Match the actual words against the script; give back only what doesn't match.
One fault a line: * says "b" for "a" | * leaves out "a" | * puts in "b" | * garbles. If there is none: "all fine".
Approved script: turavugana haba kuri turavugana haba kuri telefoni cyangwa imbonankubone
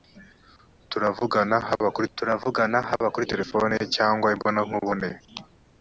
all fine